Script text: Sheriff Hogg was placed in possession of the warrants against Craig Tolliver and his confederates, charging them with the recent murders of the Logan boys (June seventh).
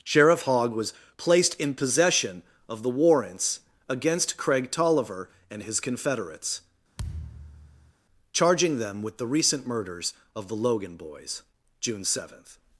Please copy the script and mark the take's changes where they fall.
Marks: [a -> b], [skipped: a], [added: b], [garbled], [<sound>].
Sheriff Hogg was placed in possession of the warrants against Craig Tolliver and his confederates, [thud] charging them with the recent murders of the Logan boys (June seventh).